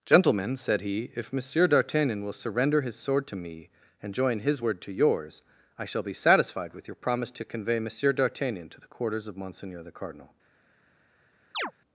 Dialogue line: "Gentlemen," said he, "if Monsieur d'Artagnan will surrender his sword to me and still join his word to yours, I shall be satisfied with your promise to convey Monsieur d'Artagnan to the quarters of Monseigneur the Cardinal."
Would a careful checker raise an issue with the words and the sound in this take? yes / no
yes